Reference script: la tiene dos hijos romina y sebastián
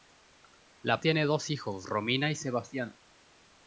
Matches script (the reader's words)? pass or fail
pass